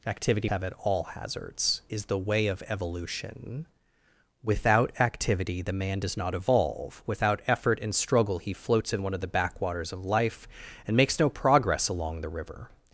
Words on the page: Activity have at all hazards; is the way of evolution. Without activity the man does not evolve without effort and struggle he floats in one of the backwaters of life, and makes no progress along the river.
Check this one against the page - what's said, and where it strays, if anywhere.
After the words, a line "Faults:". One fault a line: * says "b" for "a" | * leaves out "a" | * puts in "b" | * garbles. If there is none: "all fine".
Activity have at all hazards; is the way of evolution. Without activity the man does not evolve without effort and struggle he floats in one of the backwaters of life, and makes no progress along the river.
Faults:
all fine